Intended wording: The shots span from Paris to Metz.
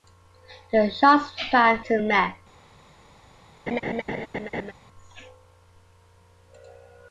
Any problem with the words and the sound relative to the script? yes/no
yes